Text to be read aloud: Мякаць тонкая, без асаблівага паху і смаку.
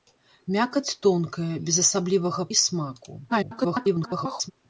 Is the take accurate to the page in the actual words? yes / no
no